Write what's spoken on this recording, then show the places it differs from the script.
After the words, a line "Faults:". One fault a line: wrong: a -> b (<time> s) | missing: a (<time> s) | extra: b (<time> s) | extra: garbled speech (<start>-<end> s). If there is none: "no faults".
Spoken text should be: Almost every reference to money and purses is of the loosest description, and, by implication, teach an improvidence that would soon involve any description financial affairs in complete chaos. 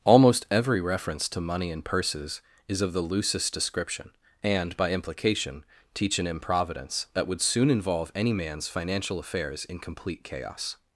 Almost every reference to money and purses is of the loosest description, and, by implication, teach an improvidence that would soon involve any man's financial affairs in complete chaos.
Faults:
wrong: description -> man's (8.3 s)